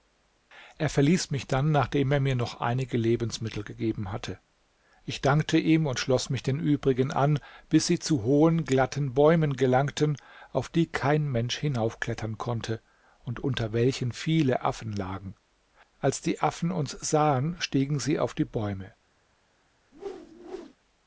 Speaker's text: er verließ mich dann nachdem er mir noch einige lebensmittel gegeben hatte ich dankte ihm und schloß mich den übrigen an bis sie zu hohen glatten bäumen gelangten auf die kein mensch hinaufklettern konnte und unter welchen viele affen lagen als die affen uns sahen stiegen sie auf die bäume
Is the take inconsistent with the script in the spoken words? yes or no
no